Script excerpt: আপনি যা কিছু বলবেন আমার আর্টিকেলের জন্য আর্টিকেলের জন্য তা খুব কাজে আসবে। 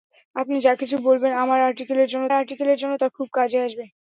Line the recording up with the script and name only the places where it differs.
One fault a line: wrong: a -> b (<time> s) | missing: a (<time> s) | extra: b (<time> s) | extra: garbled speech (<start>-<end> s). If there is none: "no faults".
no faults